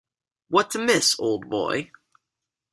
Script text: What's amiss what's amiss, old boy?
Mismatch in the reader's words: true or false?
true